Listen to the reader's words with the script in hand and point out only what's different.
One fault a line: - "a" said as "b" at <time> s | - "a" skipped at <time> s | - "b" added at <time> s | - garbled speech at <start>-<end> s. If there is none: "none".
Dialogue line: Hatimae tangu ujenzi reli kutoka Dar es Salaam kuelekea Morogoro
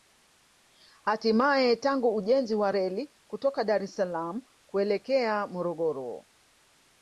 - "wa" added at 2.5 s